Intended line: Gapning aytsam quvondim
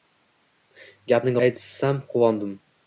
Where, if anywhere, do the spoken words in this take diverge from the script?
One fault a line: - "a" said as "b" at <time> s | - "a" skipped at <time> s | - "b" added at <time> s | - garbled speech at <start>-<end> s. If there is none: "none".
none